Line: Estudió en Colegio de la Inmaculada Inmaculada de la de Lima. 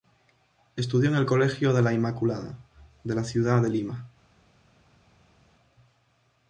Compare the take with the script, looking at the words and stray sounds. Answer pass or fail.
fail